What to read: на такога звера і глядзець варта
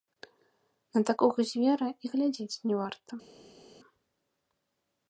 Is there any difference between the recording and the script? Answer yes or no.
yes